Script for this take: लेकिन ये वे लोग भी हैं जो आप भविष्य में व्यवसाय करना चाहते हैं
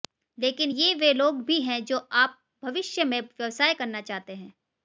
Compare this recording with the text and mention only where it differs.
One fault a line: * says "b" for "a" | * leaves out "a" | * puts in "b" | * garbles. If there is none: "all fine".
all fine